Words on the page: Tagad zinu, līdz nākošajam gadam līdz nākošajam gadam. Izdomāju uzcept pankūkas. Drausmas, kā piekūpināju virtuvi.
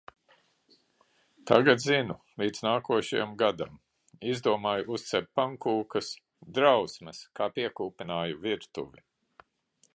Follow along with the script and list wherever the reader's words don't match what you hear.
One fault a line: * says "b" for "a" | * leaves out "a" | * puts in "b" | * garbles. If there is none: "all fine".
* leaves out "līdz nākošajam gadam"